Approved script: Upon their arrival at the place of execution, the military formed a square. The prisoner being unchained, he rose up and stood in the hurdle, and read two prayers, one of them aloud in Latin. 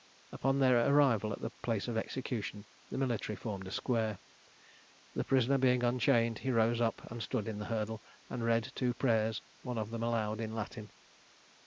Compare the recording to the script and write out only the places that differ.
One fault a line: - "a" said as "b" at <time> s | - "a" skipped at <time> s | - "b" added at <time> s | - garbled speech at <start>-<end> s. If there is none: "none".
none